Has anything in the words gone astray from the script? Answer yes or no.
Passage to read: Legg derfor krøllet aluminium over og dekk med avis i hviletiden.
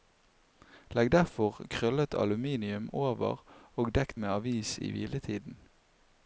no